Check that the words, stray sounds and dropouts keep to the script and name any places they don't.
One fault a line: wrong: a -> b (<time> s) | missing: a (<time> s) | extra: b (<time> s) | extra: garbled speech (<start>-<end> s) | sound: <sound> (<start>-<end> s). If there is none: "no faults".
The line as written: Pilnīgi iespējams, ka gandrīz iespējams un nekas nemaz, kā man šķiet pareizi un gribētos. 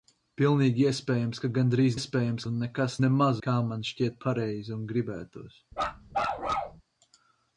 sound: bark (5.7-6.8 s)